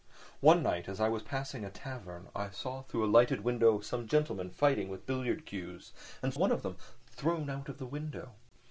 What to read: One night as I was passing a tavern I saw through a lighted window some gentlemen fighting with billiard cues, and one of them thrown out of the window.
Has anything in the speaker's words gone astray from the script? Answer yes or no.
no